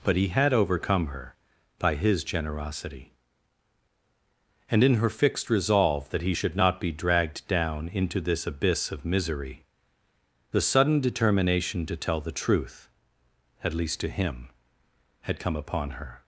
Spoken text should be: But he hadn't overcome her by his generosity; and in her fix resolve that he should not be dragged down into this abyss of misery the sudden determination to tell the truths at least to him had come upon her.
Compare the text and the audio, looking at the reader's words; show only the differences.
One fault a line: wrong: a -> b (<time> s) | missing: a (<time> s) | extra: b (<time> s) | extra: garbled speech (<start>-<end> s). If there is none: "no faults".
wrong: hadn't -> had (0.3 s)
wrong: fix -> fixed (5.1 s)
wrong: truths -> truth (12.3 s)